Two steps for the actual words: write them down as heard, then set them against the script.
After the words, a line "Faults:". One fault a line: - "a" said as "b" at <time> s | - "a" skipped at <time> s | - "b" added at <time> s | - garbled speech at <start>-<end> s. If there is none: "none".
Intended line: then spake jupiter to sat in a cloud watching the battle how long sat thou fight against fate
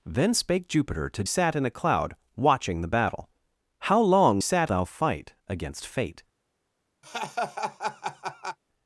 then spake jupiter to sat in a cloud watching the battle how long sat thou fight against fate
Faults:
none